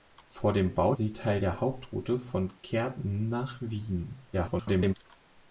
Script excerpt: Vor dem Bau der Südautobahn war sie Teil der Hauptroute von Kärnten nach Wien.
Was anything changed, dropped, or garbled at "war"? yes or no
yes